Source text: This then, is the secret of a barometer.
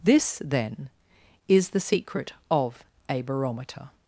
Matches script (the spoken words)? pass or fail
pass